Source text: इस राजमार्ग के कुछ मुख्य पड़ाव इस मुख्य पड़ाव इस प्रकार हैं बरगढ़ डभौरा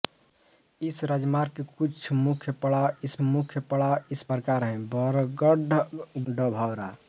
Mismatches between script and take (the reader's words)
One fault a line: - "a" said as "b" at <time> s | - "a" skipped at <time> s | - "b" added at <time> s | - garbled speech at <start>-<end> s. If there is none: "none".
none